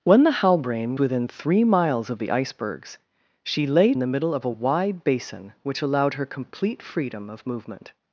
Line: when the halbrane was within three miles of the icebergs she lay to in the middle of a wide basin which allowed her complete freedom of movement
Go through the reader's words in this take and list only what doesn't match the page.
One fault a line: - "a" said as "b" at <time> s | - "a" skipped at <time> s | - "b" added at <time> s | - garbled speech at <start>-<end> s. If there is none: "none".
- "was" skipped at 1.0 s
- "to in" skipped at 3.9 s